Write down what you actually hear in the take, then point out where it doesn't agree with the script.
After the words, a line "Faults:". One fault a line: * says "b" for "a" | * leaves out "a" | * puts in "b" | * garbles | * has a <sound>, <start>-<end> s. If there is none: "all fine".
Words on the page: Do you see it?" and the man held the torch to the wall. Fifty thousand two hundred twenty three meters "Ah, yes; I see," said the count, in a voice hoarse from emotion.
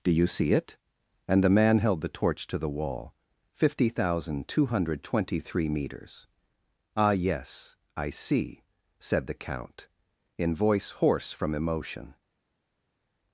Do you see it?" and the man held the torch to the wall. Fifty thousand two hundred twenty three meters "Ah, yes; I see," said the count, in voice hoarse from emotion.
Faults:
* leaves out "a"